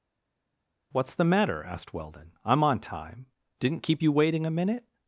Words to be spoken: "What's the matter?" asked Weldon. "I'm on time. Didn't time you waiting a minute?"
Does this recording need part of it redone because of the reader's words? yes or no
yes